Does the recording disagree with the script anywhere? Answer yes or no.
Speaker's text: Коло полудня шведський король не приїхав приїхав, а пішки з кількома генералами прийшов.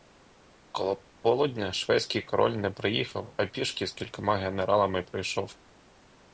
yes